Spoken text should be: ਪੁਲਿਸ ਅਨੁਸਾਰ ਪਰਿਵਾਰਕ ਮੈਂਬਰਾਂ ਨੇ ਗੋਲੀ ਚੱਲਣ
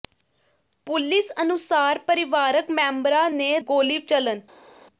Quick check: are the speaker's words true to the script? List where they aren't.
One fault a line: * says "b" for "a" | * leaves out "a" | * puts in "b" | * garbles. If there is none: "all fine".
all fine